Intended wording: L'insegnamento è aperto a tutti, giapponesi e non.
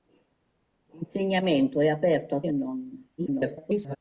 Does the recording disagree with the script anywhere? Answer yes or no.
yes